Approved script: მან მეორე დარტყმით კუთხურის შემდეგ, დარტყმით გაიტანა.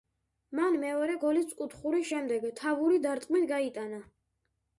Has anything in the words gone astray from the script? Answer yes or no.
yes